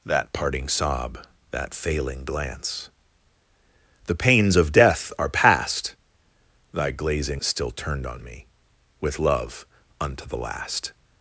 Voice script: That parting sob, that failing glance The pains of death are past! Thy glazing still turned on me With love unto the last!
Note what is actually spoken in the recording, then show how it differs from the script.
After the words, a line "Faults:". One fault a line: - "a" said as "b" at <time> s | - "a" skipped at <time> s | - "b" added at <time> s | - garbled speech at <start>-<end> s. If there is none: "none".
That parting sob, that failing glance The pains of death are past! Thy glazing still turned on me With love unto the last!
Faults:
none